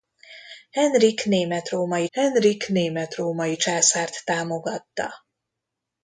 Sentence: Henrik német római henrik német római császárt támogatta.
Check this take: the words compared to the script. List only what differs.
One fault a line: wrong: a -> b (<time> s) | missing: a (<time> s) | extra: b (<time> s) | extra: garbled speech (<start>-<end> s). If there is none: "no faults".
no faults